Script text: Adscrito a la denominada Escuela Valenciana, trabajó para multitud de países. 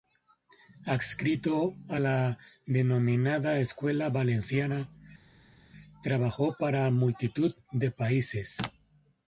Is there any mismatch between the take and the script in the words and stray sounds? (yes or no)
no